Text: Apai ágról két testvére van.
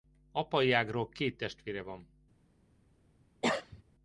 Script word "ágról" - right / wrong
right